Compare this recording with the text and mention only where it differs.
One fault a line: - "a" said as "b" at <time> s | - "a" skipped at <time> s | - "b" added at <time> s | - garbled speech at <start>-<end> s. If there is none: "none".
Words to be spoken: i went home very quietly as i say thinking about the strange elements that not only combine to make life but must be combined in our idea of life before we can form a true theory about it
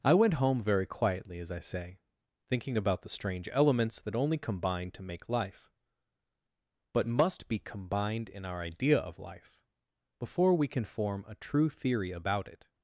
- "not" skipped at 4.2 s